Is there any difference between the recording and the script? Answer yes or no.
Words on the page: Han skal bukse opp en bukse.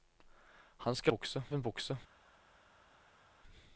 no